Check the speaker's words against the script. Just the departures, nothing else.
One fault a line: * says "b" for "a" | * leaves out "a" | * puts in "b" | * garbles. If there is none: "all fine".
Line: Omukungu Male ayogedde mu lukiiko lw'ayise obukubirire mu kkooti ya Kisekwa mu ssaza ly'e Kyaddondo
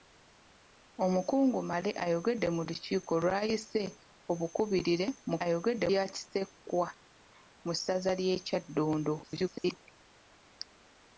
* says "ayogedde" for "kkooti"
* garbles